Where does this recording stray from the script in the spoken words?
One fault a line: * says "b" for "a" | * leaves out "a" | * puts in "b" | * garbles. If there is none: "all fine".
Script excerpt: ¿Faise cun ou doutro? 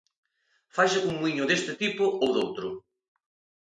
* puts in "muíño deste tipo"